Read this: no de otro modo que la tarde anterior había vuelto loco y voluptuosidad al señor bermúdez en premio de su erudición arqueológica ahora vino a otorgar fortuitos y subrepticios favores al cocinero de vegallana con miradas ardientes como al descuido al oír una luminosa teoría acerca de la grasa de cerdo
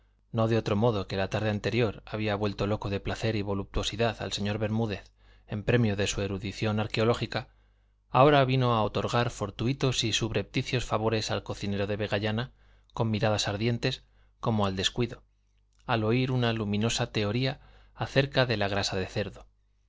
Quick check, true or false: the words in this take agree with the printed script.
false